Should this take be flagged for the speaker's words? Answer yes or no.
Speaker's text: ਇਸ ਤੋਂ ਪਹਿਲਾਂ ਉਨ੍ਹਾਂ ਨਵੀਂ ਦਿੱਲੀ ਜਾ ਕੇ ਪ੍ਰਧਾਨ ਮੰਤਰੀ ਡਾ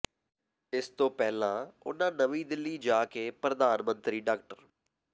no